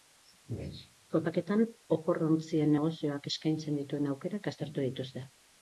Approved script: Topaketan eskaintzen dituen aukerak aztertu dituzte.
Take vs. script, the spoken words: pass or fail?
fail